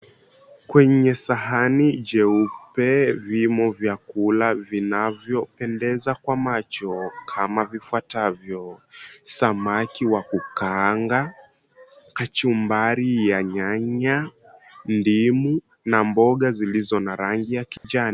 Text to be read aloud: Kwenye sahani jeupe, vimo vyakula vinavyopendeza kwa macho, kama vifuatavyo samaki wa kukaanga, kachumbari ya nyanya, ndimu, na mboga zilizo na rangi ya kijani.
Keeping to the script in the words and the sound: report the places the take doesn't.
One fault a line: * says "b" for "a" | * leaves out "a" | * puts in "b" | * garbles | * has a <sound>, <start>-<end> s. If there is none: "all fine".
* has a dropout, 17.8-17.8 s